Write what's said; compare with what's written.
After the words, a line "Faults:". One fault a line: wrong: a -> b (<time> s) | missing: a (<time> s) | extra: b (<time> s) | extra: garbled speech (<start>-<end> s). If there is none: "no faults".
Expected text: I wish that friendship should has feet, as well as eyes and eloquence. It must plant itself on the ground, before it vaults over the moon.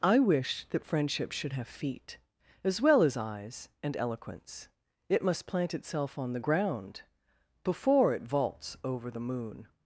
I wish that friendship should have feet, as well as eyes and eloquence. It must plant itself on the ground, before it vaults over the moon.
Faults:
wrong: has -> have (1.5 s)